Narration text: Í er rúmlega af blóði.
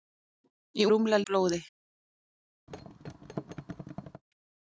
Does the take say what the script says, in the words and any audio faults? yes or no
no